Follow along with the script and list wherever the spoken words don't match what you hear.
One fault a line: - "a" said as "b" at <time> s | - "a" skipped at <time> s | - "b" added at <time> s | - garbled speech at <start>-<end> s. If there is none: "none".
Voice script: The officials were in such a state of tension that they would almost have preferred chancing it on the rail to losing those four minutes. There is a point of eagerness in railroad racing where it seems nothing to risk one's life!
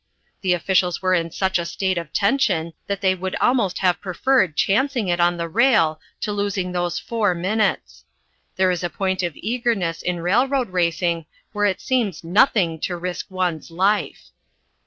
none